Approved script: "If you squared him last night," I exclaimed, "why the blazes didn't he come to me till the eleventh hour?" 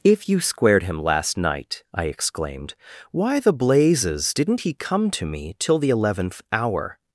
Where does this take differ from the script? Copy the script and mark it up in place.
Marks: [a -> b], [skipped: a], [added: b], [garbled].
"If you squared him last night," I exclaimed, "why the blazes didn't he come to me till the eleventh hour?"